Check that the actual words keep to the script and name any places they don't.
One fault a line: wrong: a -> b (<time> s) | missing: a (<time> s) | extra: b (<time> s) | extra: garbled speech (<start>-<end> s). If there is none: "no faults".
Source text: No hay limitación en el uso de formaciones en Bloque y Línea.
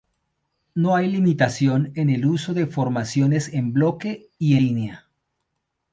no faults